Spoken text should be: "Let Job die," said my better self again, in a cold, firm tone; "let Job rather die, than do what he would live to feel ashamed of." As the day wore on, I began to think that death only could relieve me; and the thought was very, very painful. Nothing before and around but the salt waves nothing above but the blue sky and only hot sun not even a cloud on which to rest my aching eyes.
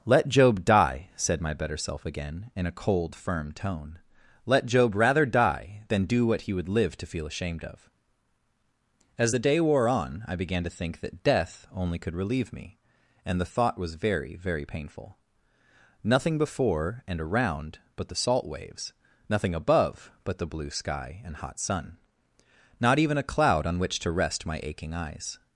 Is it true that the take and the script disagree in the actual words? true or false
true